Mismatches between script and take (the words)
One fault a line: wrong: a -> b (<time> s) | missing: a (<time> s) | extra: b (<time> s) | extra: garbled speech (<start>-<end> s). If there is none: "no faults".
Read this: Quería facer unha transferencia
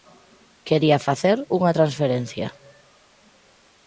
no faults